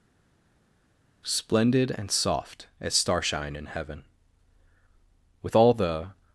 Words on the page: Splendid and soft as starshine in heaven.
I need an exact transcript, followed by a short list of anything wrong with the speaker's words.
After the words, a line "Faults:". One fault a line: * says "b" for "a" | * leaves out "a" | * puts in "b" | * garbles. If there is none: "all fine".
Splendid and soft as starshine in heaven. With all the
Faults:
* puts in "With all the"